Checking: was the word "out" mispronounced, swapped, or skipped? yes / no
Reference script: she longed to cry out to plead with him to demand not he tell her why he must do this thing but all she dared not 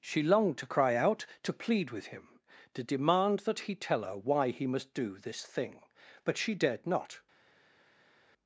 no